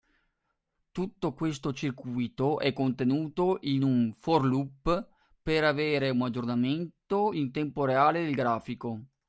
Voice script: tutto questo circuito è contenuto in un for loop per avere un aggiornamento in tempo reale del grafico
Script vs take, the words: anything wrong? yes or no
no